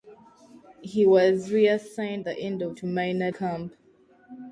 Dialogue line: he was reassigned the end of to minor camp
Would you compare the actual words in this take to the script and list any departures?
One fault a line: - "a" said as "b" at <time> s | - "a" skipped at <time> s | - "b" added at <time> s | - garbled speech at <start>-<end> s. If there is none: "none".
none